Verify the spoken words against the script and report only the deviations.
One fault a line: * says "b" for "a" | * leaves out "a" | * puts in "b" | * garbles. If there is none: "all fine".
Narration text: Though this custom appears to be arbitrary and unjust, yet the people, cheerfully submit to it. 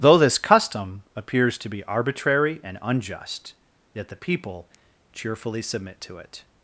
all fine